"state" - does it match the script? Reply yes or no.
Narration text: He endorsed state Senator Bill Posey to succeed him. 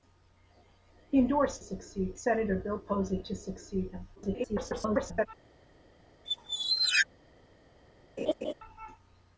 no